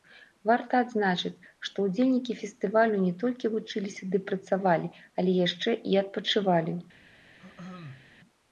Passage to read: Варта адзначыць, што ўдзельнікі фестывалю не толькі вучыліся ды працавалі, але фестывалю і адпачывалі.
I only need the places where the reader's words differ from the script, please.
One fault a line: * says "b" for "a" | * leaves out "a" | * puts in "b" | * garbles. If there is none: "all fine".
* says "яшчэ" for "фестывалю"